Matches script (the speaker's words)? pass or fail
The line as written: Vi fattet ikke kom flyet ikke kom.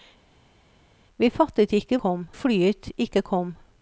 pass